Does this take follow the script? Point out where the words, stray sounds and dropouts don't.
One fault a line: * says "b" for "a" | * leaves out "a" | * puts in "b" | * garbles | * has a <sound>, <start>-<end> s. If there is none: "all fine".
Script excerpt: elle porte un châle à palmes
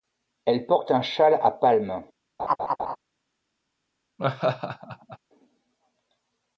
* has a laugh, 2.4-3.0 s
* has a laugh, 4.2-5.2 s